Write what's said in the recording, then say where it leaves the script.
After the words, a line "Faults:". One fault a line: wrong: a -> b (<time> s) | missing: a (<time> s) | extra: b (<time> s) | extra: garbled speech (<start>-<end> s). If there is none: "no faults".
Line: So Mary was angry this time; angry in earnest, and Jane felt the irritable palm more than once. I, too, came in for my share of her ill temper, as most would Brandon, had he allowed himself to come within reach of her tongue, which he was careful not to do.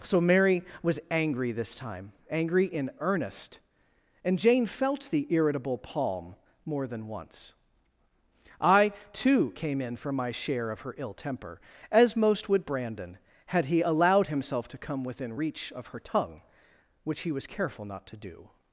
So Mary was angry this time; angry in earnest, and Jane felt the irritable palm more than once. I, too, came in for my share of her ill temper, as most would Brandon, had he allowed himself to come within reach of her tongue, which he was careful not to do.
Faults:
no faults